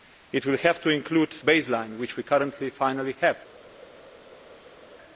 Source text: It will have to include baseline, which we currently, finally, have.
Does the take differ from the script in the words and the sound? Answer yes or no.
no